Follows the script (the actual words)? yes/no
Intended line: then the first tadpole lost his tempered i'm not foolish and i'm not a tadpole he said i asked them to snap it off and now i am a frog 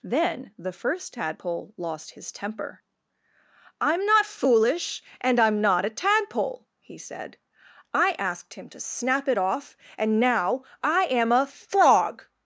no